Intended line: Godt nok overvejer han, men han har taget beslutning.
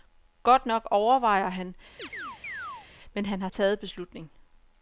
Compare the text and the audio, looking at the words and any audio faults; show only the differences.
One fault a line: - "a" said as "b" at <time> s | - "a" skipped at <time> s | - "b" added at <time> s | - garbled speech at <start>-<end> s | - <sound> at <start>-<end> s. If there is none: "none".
- chirp at 2.0-2.9 s